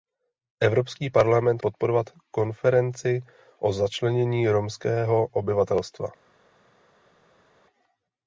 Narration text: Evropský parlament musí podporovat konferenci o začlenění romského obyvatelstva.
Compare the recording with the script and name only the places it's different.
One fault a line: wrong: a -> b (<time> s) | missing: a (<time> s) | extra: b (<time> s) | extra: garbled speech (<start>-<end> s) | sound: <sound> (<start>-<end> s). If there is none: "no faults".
missing: musí (1.6 s)